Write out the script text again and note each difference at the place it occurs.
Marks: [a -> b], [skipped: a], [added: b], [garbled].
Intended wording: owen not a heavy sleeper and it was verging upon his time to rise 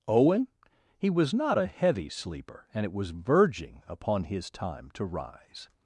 owen [added: he was] not a heavy sleeper and it was verging upon his time to rise